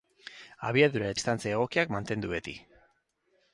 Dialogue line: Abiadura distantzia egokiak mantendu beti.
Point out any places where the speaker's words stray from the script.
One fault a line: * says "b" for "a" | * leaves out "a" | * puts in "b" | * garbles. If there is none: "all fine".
all fine